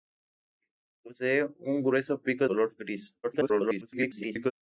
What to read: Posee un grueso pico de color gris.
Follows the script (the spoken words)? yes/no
no